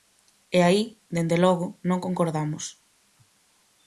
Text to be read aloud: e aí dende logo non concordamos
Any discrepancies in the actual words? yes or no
no